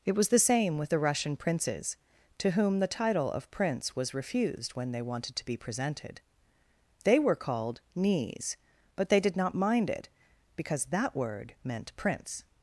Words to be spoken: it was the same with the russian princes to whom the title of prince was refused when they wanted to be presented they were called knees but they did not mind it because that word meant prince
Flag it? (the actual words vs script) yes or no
no